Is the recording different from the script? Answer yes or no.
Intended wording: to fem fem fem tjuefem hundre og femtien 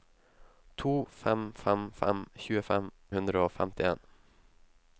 no